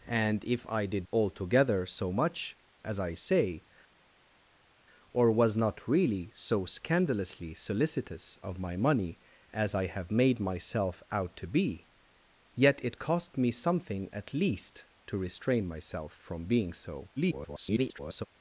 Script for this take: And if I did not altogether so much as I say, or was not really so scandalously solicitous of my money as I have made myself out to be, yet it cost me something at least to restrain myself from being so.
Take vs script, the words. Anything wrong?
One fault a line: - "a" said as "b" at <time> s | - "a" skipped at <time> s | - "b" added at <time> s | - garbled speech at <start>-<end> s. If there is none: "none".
- "not" skipped at 1.1 s
- garbled speech at 17.2-18.3 s